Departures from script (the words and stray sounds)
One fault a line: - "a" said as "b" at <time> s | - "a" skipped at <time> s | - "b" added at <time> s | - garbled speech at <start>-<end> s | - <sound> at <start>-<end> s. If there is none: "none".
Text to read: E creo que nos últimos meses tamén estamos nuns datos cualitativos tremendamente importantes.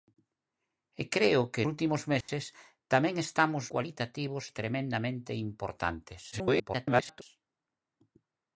- "nos" skipped at 1.6 s
- dropout at 2.2-2.3 s
- "nuns datos" skipped at 3.6 s
- garbled speech at 6.3-7.2 s